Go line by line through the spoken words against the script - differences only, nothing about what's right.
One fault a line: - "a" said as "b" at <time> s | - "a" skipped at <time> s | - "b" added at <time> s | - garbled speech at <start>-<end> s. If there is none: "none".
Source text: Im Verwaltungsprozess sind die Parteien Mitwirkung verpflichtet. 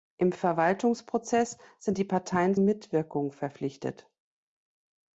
none